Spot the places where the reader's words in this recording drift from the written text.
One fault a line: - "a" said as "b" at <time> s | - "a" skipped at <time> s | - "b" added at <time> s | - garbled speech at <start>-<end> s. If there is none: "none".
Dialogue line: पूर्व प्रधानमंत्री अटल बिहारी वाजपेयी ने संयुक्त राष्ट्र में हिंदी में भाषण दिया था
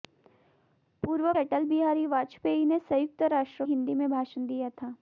- "प्रधानमंत्री" skipped at 1.3 s
- "में" skipped at 3.7 s